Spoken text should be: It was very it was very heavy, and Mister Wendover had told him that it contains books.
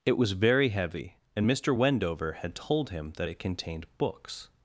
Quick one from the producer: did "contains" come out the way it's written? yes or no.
no